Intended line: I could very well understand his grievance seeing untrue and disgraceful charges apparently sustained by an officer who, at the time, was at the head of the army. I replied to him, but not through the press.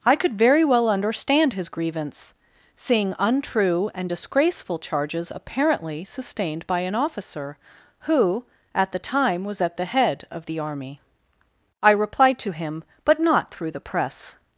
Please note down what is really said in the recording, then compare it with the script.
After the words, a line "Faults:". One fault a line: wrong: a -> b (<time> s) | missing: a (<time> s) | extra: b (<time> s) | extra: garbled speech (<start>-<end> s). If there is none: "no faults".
I could very well understand his grievance seeing untrue and disgraceful charges apparently sustained by an officer who, at the time, was at the head of the army. I replied to him, but not through the press.
Faults:
no faults